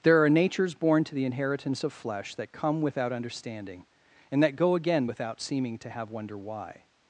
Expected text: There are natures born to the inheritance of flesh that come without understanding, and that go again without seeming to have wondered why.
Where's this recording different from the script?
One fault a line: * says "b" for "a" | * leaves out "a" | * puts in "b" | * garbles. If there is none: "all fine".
* says "wonder" for "wondered"